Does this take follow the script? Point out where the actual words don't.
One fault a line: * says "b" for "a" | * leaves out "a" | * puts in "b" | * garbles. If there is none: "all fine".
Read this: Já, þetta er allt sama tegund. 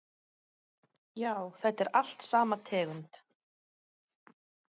all fine